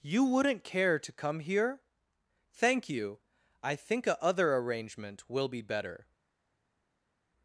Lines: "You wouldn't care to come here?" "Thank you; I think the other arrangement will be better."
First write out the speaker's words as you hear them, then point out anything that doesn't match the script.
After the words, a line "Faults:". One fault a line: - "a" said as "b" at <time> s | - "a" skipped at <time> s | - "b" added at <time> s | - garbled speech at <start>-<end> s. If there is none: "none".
"You wouldn't care to come here?" "Thank you; I think a other arrangement will be better."
Faults:
- "the" said as "a" at 4.1 s